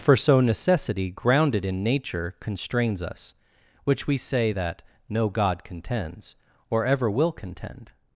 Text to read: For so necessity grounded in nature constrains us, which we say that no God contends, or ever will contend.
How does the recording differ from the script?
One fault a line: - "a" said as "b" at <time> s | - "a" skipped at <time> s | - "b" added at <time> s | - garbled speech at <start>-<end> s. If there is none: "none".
none